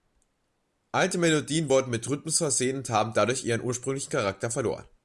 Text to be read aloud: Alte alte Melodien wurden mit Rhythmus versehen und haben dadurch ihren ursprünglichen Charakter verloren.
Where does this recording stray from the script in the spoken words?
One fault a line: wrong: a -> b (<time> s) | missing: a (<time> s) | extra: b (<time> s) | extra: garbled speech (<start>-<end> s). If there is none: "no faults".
missing: alte (1.2 s)